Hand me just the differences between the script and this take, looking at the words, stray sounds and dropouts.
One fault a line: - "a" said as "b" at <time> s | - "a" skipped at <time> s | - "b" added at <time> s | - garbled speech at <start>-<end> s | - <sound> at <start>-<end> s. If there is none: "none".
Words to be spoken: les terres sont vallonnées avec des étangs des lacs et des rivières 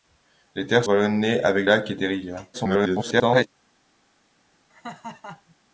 - "sont" skipped at 0.8 s
- "des étangs des" skipped at 1.7 s
- garbled speech at 2.5-3.5 s
- laugh at 4.7-5.6 s